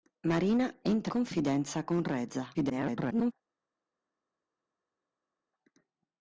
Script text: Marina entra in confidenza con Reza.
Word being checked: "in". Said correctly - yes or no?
no